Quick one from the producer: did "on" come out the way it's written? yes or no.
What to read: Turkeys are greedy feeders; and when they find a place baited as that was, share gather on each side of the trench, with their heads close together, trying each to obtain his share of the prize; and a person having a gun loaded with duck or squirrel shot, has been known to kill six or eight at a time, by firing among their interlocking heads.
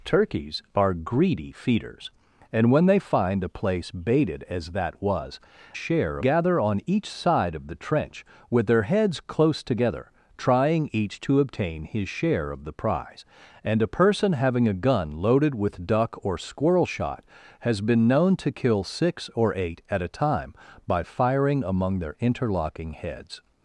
yes